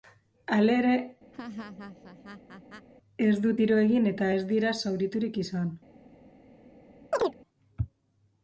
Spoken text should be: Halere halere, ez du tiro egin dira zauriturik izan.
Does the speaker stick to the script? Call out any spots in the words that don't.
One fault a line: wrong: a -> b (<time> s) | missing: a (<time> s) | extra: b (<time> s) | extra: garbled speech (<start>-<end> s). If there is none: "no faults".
missing: halere (0.9 s)
extra: eta ez (4.1 s)